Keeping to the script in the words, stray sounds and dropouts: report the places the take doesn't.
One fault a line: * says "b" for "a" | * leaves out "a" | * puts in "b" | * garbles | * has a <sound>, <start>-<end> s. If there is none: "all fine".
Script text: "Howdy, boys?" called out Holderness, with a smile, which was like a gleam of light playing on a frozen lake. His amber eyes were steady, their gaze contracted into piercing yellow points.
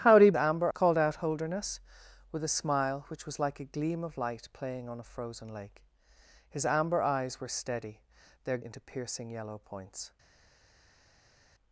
* says "amber" for "boys"
* leaves out "gaze contracted"